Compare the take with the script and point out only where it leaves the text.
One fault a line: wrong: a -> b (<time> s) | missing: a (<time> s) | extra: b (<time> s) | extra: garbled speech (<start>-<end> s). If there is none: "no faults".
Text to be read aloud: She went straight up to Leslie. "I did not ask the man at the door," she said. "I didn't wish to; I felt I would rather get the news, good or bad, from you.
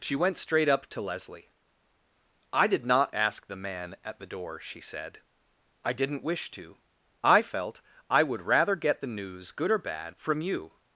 no faults